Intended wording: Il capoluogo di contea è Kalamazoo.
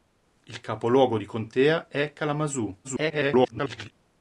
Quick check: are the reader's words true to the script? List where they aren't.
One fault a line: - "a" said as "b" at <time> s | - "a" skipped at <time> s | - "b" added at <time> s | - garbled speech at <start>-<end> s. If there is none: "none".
- garbled speech at 2.8-3.9 s